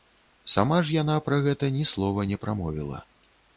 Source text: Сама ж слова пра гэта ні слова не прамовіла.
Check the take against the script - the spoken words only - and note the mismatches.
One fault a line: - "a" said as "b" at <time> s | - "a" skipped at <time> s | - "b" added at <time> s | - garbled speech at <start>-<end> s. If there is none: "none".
- "слова" said as "яна" at 0.9 s